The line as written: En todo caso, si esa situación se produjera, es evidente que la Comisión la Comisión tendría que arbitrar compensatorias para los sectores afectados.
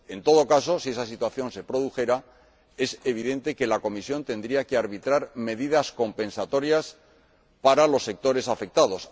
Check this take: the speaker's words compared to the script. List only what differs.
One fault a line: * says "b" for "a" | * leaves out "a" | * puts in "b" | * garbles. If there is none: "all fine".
* leaves out "la Comisión"
* puts in "medidas"